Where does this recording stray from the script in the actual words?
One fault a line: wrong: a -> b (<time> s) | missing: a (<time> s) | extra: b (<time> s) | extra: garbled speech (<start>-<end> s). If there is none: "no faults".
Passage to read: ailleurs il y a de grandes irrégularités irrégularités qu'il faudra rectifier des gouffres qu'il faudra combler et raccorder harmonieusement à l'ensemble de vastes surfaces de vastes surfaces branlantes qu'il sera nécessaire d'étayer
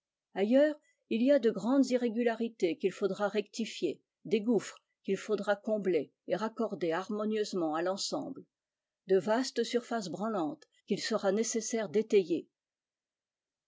missing: irrégularités (2.8 s)
missing: de vastes surfaces (10.1 s)